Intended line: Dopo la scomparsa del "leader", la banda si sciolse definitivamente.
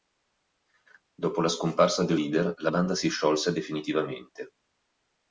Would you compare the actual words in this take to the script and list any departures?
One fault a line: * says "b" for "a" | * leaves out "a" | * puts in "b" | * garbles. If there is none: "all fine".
all fine